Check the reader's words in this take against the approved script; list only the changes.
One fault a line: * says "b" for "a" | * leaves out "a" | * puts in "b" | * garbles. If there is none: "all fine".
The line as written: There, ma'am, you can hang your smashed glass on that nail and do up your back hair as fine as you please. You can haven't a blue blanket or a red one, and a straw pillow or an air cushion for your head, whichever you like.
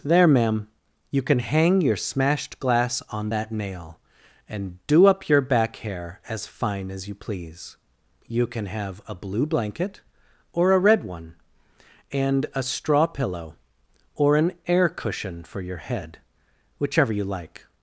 * says "have" for "haven't"